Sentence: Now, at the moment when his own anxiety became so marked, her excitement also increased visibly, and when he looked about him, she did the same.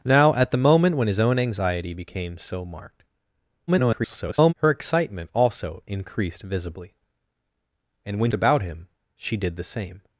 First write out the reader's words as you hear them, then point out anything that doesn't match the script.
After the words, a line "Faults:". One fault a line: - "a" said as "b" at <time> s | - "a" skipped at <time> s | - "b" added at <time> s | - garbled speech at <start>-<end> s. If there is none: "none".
Now, at the moment when his own anxiety became so marked, [garbled] her excitement also increased visibly, and when about him, she did the same.
Faults:
- garbled speech at 3.7-4.5 s
- "he looked" skipped at 8.3 s